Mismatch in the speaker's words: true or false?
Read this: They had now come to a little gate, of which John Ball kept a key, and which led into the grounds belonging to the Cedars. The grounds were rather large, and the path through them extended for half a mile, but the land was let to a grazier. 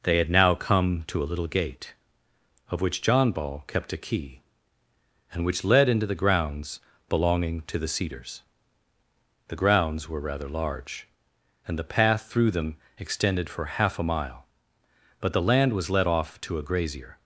true